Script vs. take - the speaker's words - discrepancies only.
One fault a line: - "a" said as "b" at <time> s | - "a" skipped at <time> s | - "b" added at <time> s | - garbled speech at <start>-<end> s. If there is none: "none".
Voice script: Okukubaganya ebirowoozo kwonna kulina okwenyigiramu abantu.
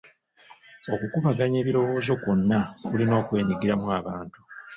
none